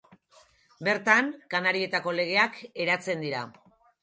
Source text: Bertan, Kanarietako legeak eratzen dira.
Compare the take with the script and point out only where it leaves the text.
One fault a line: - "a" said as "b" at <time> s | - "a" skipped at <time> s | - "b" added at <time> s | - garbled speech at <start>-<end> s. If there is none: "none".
none